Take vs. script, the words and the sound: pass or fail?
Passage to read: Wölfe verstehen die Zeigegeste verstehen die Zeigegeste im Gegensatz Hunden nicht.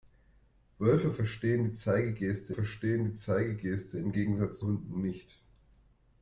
pass